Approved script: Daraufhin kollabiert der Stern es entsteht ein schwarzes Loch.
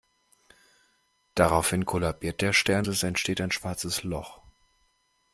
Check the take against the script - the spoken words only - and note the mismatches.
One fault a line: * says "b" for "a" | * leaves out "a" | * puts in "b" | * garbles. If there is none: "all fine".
all fine